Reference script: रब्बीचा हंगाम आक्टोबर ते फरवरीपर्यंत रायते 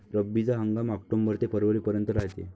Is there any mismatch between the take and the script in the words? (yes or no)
no